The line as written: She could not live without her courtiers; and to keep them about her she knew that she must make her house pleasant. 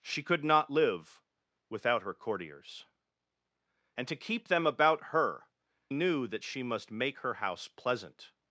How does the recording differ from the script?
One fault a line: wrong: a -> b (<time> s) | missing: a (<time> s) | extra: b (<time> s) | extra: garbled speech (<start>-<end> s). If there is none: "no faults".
missing: she (5.5 s)